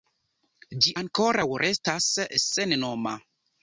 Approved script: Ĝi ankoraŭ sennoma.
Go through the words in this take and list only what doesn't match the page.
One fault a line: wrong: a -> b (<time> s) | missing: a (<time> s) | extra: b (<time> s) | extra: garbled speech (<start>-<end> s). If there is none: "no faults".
extra: restas (1.6 s)